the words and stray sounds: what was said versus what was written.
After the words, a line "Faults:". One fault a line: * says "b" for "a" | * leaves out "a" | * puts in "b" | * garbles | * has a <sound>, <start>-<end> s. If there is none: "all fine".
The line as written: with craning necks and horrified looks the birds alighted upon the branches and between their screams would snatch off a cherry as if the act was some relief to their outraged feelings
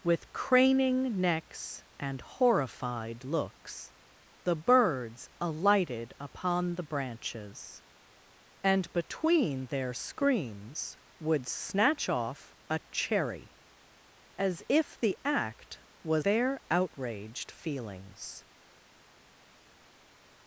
with craning necks and horrified looks the birds alighted upon the branches and between their screams would snatch off a cherry as if the act was their outraged feelings
Faults:
* leaves out "some relief to"